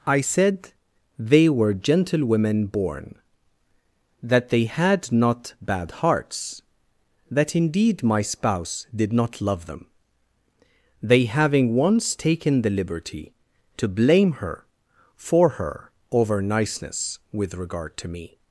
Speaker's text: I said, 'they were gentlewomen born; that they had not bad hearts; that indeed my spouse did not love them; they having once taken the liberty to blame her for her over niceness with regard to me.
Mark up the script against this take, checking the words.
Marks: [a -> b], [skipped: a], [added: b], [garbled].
I said, 'they were gentlewomen born; that they had not bad hearts; that indeed my spouse did not love them; they having once taken the liberty to blame her for her over niceness with regard to me.